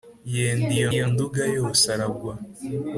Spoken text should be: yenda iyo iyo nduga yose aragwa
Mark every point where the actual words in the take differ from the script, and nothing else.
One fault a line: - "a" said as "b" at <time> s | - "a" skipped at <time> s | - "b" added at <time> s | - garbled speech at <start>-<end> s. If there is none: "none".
none